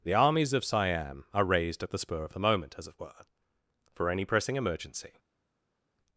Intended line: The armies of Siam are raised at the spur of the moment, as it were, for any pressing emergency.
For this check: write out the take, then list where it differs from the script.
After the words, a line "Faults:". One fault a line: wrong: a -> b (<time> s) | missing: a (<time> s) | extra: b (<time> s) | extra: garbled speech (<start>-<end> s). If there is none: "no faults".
The armies of Siam are raised at the spur of the moment, as it were, for any pressing emergency.
Faults:
no faults